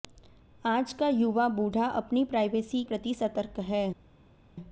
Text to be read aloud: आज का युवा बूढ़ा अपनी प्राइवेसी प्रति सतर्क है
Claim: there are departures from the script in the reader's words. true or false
false